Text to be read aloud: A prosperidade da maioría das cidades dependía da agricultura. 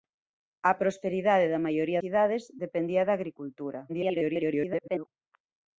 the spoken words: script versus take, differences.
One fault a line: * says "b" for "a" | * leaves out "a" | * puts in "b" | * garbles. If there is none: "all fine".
* leaves out "das"
* garbles